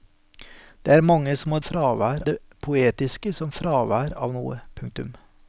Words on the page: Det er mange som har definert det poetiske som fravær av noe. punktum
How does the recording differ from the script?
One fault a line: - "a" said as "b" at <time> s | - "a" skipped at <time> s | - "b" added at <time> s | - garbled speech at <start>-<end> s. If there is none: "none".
- "definert" said as "fravær" at 1.6 s